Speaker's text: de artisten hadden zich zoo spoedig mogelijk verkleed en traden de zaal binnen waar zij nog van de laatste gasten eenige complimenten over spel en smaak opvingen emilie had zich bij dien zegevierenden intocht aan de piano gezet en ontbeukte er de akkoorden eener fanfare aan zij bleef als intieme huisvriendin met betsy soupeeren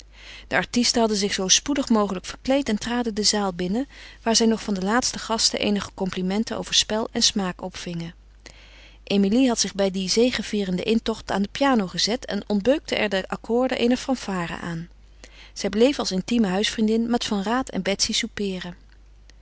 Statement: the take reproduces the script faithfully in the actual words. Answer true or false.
false